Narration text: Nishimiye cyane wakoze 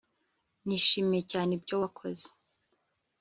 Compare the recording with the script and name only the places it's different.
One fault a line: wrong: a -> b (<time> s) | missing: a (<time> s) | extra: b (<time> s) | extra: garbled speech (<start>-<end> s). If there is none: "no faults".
extra: ibyo (1.6 s)